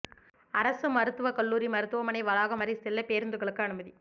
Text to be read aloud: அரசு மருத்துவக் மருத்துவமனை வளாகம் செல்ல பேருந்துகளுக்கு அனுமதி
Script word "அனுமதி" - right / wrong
right